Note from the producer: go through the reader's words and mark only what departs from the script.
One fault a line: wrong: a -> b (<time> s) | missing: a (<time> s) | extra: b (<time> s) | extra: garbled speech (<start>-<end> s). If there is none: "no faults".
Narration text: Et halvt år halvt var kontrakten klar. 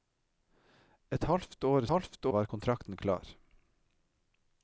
no faults